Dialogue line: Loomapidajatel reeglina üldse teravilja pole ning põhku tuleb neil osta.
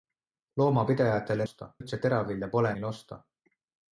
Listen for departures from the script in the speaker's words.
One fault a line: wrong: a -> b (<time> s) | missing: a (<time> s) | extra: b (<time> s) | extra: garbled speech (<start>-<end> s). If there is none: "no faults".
wrong: reeglina -> osta (1.5 s)
missing: ning põhku tuleb (2.7 s)